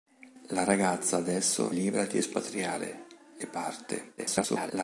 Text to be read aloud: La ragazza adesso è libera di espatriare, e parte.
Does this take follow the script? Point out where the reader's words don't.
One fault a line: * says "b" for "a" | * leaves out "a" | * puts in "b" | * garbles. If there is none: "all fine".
* leaves out "è"
* garbles